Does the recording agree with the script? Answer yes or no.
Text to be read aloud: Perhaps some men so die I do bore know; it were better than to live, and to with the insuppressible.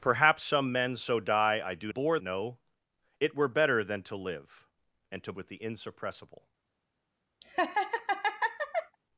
yes